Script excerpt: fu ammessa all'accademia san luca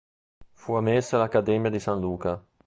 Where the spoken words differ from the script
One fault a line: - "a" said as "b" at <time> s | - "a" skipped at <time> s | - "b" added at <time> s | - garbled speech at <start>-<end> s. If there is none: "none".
- "di" added at 1.7 s